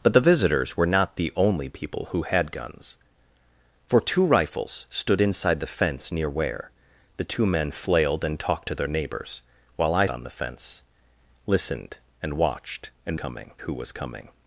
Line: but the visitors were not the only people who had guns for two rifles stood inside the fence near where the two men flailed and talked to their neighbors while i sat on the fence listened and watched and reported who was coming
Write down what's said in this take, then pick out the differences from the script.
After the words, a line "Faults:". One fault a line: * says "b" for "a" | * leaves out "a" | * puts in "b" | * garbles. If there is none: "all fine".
but the visitors were not the only people who had guns for two rifles stood inside the fence near where the two men flailed and talked to their neighbors while i on the fence listened and watched and coming who was coming
Faults:
* leaves out "sat"
* says "coming" for "reported"